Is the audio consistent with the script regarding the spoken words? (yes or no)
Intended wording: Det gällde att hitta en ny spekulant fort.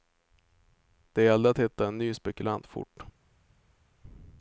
yes